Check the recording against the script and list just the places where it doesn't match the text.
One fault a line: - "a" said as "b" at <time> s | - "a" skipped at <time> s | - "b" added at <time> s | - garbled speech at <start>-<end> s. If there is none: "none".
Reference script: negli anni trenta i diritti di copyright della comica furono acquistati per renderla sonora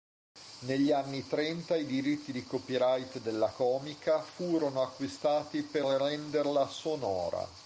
none